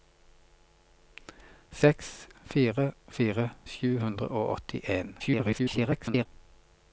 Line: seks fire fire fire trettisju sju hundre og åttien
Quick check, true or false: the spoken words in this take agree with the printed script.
false